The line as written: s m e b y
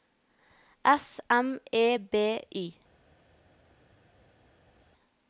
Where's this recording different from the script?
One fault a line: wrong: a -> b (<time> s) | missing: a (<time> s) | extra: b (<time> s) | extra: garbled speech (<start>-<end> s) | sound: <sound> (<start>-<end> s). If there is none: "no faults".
no faults